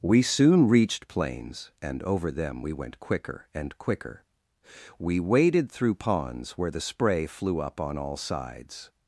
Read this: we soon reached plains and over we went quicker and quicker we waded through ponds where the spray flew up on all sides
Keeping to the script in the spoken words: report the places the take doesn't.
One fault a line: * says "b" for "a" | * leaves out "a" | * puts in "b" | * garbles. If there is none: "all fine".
* puts in "them"